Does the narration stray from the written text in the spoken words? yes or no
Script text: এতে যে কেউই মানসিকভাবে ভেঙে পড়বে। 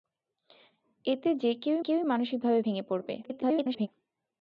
yes